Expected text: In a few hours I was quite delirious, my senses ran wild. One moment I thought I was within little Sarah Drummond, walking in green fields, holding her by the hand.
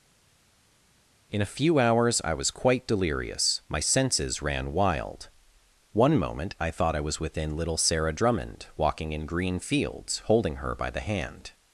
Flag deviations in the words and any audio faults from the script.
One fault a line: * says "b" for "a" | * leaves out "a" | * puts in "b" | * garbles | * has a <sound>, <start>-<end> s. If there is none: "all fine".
all fine